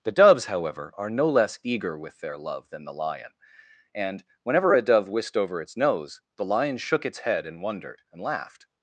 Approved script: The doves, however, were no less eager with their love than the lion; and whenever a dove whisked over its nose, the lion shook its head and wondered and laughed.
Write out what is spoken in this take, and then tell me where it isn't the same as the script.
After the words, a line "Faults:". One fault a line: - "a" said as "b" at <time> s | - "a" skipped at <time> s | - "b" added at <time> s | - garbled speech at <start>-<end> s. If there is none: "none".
The doves, however, are no less eager with their love than the lion; and whenever a dove whisked over its nose, the lion shook its head and wondered and laughed.
Faults:
- "were" said as "are" at 1.0 s